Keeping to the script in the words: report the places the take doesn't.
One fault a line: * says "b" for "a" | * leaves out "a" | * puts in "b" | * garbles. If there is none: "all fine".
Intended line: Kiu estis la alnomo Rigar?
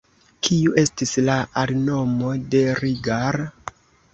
* puts in "de"